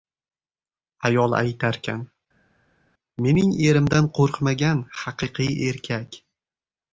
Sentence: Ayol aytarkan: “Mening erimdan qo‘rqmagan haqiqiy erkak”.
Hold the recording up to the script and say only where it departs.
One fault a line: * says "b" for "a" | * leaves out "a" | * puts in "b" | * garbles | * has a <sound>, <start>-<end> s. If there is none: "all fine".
all fine